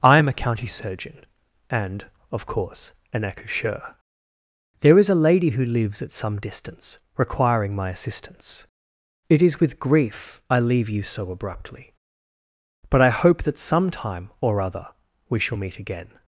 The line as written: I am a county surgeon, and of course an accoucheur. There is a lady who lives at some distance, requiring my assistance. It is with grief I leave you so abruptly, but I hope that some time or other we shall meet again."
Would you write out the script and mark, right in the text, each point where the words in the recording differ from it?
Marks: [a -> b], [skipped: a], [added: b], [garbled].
I am a county surgeon, and of course an accoucheur. There is a lady who lives at some distance, requiring my assistance. It is with grief I leave you so abruptly, but I hope that some time or other we shall meet again."